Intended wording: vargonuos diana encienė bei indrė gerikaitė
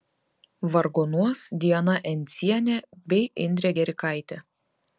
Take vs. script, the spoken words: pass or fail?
pass